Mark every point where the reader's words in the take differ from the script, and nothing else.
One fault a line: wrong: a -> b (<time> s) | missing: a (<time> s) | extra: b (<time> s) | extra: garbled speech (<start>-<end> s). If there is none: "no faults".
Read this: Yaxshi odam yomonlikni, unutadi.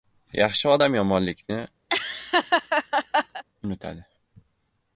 no faults